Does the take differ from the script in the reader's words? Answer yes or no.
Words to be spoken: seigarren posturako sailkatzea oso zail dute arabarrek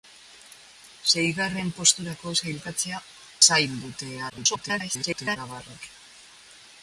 yes